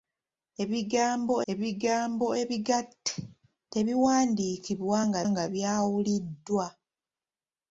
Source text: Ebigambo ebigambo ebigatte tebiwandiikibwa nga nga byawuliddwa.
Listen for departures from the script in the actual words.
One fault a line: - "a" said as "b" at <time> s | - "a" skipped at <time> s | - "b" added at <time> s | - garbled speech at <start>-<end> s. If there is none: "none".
none